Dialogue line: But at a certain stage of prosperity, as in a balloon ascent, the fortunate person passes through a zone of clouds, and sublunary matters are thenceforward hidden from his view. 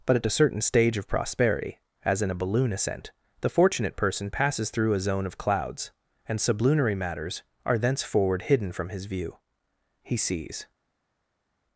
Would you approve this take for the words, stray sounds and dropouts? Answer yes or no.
no